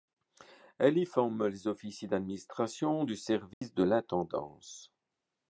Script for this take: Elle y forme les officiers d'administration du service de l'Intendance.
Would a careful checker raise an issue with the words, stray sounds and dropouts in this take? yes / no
yes